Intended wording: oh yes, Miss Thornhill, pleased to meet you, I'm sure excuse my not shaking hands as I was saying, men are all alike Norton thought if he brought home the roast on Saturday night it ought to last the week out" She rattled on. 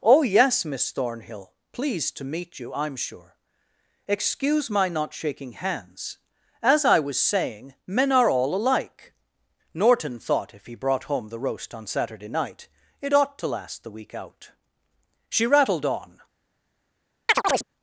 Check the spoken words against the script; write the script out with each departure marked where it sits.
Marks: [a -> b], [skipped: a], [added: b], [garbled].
oh yes, Miss Thornhill, pleased to meet you, I'm sure excuse my not shaking hands as I was saying, men are all alike Norton thought if he brought home the roast on Saturday night it ought to last the week out" She rattled on.